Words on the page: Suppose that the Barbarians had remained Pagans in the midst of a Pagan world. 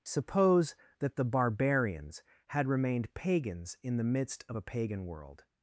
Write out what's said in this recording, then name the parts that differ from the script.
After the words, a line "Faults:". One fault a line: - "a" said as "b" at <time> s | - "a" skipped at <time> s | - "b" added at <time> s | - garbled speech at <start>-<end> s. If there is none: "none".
Suppose that the Barbarians had remained Pagans in the midst of a Pagan world.
Faults:
none